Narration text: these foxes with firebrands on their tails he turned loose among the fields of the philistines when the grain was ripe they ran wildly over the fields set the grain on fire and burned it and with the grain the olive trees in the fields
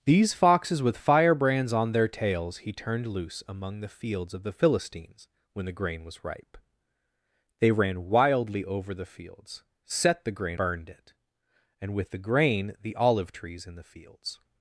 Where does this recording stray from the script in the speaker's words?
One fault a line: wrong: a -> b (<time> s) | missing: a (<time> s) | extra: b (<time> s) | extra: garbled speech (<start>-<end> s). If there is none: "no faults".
missing: on fire and (10.6 s)